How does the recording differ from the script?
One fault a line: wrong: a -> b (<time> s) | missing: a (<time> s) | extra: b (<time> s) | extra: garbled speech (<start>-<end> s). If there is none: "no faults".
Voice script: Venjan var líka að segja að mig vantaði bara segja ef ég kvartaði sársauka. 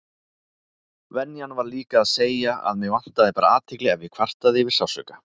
wrong: segja -> athygli (3.6 s)
extra: yfir (4.7 s)